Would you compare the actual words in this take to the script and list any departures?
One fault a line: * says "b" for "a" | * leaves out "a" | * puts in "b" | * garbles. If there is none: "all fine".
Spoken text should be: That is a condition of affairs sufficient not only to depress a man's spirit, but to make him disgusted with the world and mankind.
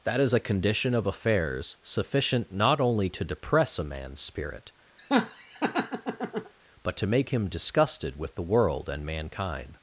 all fine